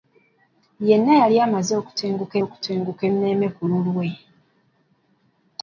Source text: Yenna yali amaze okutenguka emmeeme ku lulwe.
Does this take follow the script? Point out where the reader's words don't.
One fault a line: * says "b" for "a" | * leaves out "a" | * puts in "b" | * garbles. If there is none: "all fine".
* puts in "okutenguka"